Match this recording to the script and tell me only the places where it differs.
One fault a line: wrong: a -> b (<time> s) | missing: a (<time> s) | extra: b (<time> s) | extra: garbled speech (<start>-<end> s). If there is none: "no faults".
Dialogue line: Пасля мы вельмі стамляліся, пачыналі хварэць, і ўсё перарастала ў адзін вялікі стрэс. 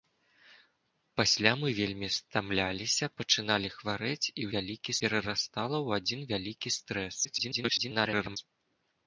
wrong: ўсё -> вялікі (4.6 s)
extra: garbled speech (7.2-8.4 s)